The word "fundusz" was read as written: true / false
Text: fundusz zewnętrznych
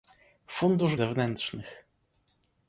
true